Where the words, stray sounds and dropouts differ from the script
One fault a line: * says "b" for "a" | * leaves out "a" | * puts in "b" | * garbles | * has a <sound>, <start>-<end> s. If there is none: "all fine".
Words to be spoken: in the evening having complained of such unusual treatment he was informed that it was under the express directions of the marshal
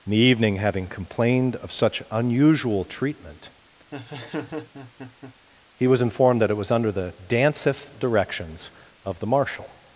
* has a laugh, 3.9-5.3 s
* says "danceth" for "express"